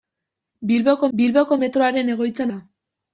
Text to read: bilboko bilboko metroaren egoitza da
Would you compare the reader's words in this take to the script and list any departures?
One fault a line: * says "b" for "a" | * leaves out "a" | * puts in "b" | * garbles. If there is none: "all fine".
all fine